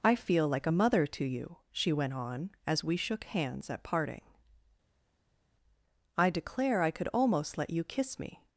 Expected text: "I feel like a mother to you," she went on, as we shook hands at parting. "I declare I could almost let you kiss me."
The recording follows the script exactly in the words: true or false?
true